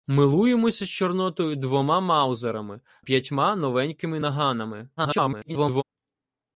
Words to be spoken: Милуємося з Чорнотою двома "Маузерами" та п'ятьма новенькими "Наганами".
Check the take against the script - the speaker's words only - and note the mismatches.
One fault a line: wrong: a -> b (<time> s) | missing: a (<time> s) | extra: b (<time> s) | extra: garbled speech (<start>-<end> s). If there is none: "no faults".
missing: та (2.8 s)
extra: garbled speech (5.0-5.8 s)